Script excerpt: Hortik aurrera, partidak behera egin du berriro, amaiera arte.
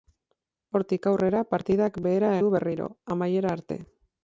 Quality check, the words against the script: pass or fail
fail